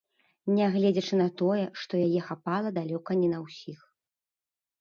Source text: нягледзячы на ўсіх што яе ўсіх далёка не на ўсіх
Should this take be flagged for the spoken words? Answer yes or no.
yes